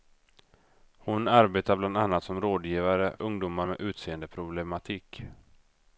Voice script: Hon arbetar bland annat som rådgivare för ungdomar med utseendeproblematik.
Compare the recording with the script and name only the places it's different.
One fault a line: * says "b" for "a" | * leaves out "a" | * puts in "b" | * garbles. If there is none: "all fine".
* leaves out "för"